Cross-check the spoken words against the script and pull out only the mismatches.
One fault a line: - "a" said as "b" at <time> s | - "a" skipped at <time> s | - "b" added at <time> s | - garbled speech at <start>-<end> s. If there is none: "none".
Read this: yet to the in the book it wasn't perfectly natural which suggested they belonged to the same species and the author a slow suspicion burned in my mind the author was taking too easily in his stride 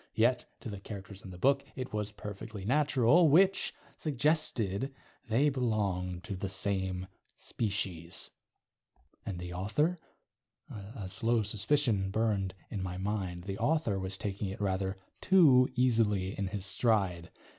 - "characters" added at 0.8 s
- "wasn't" said as "was" at 1.9 s
- "it rather" added at 14.5 s